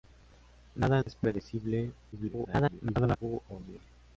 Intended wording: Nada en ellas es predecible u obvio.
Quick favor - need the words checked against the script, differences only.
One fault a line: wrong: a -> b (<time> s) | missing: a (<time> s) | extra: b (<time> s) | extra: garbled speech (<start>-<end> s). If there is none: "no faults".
missing: en ellas (1.0 s)
extra: garbled speech (2.1-3.2 s)